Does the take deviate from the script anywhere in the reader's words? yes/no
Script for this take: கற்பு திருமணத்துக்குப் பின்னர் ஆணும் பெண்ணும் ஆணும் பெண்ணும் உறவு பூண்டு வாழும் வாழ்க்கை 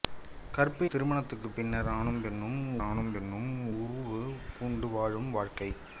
no